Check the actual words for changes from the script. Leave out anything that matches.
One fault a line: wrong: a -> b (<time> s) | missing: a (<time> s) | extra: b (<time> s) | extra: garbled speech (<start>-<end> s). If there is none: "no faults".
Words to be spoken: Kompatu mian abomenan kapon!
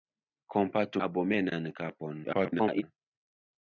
missing: mian (1.0 s)
extra: garbled speech (2.2-2.8 s)